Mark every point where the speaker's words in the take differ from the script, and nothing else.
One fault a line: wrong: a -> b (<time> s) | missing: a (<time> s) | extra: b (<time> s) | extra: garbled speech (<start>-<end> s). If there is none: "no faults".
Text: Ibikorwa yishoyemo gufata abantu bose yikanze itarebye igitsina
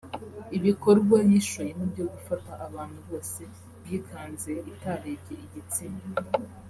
extra: byo (1.9 s)